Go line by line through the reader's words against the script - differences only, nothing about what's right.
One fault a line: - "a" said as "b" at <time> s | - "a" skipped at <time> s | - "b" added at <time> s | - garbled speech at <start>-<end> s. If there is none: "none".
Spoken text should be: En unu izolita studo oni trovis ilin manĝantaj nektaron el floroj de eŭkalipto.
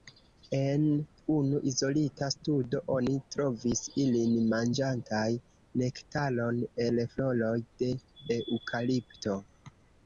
none